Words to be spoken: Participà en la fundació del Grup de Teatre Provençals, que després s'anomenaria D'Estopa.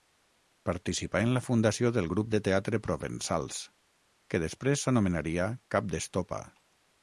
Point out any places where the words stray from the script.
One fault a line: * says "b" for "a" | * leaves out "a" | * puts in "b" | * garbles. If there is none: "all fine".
* puts in "Cap"